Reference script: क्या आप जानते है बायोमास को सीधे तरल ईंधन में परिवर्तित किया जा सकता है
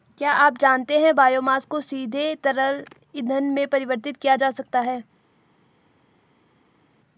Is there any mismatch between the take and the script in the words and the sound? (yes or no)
no